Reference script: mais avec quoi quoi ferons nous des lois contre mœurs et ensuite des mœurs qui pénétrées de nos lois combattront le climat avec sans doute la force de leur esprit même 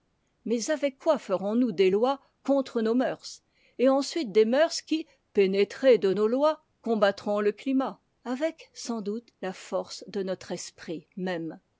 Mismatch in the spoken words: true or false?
true